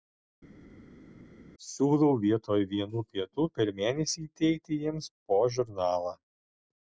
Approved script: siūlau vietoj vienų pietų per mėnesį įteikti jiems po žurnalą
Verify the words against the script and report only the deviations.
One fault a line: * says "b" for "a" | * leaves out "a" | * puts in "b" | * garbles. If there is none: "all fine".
all fine